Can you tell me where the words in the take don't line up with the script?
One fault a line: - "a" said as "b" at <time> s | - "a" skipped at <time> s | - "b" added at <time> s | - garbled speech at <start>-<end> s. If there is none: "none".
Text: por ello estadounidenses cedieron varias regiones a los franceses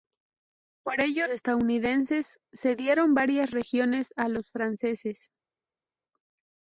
none